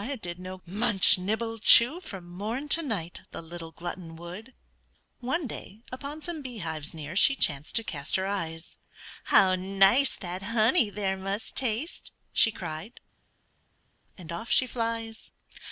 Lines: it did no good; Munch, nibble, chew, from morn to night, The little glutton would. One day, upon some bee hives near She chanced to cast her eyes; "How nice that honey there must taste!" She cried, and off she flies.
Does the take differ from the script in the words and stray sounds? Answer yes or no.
yes